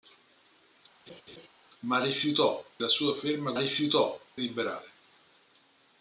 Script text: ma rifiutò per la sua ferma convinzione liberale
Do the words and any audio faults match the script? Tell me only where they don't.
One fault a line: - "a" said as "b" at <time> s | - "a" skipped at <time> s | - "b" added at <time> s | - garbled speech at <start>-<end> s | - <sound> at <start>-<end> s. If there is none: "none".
- laugh at 1.1-1.5 s
- "per" skipped at 2.6 s
- "convinzione" said as "rifiutò" at 3.5 s